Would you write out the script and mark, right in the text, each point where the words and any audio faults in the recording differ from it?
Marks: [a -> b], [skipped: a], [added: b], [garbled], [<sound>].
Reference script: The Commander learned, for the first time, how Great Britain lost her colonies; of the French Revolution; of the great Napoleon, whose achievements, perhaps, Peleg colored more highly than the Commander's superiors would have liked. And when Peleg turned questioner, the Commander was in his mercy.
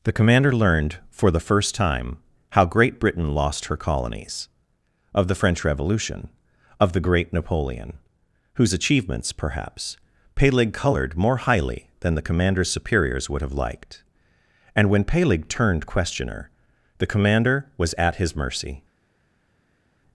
The Commander learned, for the first time, how Great Britain lost her colonies; of the French Revolution; of the great Napoleon, whose achievements, perhaps, Peleg colored more highly than the Commander's superiors would have liked. And when Peleg turned questioner, the Commander was [in -> at] his mercy.